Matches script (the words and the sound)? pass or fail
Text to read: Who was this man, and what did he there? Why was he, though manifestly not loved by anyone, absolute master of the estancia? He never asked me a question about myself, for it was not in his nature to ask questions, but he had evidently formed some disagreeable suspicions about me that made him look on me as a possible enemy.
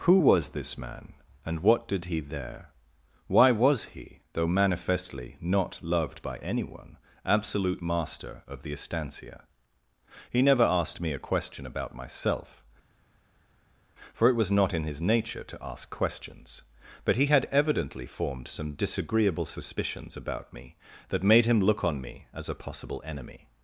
pass